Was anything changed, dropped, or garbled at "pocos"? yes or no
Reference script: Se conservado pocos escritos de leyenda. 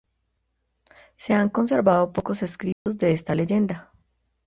no